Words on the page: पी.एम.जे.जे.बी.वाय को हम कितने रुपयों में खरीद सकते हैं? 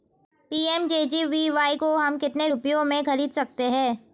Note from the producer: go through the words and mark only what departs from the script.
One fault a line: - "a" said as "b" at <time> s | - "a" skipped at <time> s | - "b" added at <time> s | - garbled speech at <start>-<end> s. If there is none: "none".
none